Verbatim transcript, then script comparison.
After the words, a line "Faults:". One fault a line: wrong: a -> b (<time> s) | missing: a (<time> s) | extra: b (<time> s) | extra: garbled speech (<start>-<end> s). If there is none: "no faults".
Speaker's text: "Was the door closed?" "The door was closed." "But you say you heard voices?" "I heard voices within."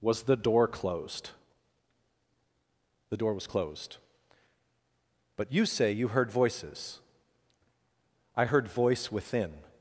"Was the door closed?" "The door was closed." "But you say you heard voices?" "I heard voice within."
Faults:
wrong: voices -> voice (8.7 s)